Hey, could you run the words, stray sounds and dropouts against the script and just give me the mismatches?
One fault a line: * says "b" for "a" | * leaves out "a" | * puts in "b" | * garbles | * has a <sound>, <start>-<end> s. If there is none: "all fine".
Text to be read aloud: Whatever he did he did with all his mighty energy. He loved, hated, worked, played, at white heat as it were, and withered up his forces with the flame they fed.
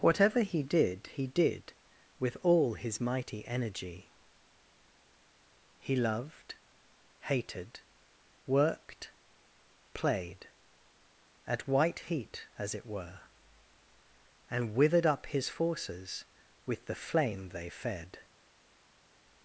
all fine